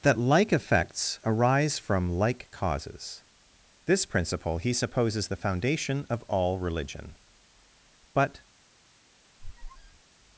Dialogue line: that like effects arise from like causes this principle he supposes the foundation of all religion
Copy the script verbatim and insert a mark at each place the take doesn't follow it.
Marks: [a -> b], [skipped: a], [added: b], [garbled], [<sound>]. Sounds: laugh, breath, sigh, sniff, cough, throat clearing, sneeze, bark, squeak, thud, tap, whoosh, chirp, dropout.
that like effects arise from like causes this principle he supposes the foundation of all religion [added: but] [squeak]